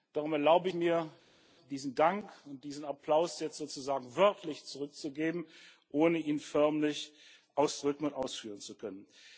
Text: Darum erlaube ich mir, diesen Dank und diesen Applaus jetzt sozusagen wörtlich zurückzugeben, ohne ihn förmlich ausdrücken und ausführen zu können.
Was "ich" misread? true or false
true